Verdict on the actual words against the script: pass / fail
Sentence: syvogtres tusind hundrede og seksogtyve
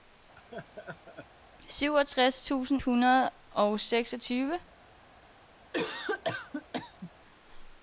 pass